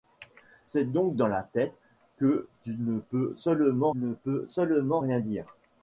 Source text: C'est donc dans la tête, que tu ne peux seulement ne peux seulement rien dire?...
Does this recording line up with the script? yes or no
yes